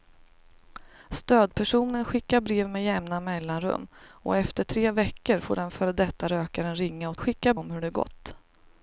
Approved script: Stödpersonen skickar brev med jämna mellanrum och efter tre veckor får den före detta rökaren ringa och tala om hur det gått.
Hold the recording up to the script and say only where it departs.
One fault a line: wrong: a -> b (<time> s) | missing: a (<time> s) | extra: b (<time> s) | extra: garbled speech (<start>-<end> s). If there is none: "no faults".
wrong: tala -> skickar (7.2 s)